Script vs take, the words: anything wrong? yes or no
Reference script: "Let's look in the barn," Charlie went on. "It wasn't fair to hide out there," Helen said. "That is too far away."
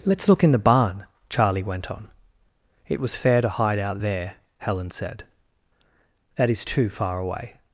yes